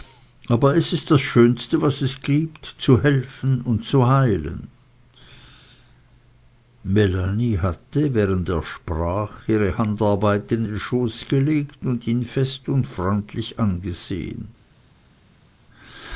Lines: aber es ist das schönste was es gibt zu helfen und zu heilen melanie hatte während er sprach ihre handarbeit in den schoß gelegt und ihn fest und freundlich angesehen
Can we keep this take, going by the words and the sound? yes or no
yes